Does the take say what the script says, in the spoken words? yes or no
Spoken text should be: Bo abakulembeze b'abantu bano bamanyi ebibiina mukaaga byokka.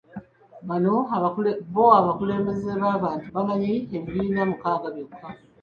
no